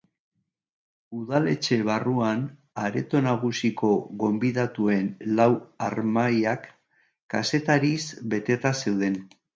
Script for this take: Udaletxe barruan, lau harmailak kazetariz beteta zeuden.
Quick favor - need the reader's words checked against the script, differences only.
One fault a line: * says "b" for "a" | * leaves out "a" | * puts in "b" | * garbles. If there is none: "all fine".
* puts in "areto nagusiko gonbidatuen"